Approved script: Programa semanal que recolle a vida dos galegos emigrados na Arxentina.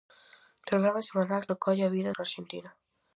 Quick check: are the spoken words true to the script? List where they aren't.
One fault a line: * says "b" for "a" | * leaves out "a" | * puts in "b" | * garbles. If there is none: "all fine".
* leaves out "que"
* leaves out "dos galegos emigrados"